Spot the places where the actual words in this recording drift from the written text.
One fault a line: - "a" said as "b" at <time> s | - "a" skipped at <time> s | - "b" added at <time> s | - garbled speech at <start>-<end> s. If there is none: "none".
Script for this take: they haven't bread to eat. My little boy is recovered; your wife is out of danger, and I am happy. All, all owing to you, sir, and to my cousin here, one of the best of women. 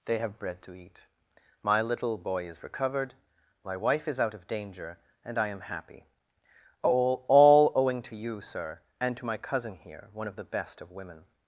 - "haven't" said as "have" at 0.2 s
- "your" said as "my" at 3.6 s